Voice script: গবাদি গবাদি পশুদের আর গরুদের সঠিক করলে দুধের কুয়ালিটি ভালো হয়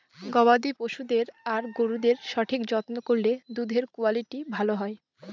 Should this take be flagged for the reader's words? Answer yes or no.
yes